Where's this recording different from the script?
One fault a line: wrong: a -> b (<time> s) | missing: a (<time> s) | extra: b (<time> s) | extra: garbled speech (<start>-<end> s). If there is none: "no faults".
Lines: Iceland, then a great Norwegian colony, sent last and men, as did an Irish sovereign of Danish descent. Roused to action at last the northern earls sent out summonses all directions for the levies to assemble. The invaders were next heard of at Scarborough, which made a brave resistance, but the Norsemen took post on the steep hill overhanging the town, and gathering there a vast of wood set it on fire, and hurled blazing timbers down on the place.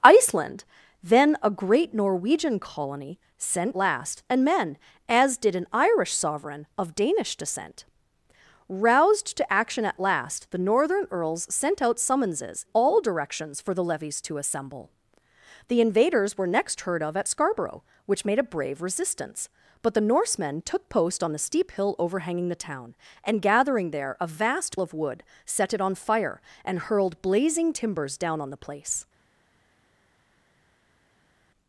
no faults